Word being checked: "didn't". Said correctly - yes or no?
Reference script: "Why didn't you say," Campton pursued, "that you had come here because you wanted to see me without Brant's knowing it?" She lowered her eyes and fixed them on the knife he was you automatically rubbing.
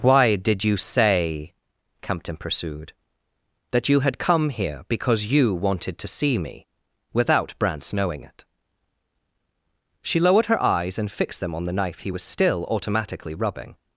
no